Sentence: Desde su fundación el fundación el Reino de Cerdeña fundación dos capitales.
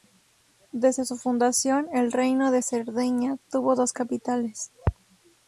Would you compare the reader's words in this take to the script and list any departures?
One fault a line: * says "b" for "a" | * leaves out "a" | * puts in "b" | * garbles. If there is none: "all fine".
* leaves out "fundación el"
* says "tuvo" for "fundación"